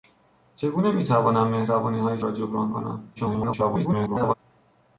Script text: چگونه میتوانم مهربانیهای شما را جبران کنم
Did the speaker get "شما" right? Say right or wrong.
wrong